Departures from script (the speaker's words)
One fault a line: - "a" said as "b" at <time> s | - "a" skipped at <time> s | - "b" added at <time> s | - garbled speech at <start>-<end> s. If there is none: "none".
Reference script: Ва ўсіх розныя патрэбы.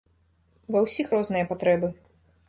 none